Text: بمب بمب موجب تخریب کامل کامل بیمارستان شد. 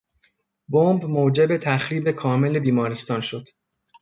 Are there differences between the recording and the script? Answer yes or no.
yes